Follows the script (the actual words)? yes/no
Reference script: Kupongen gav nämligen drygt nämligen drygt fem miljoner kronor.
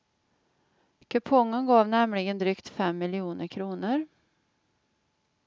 no